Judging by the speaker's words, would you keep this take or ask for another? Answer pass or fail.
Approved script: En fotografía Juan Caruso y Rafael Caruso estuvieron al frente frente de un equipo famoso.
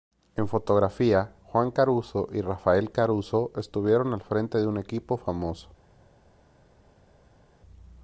fail